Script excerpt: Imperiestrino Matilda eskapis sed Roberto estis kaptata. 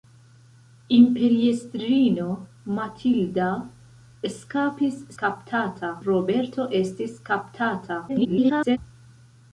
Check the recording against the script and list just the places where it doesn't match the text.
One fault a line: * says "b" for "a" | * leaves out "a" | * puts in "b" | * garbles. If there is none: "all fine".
* says "kaptata" for "sed"
* garbles